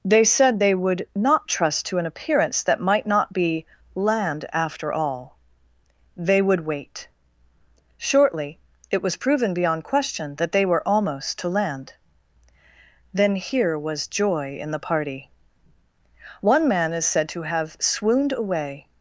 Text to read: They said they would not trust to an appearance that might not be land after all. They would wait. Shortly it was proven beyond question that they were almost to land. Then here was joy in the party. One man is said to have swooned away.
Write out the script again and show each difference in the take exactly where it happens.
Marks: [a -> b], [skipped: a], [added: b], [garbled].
They said they would not trust to an appearance that might not be land after all. They would wait. Shortly it was proven beyond question that they were almost to land. Then here was joy in the party. One man is said to have swooned away.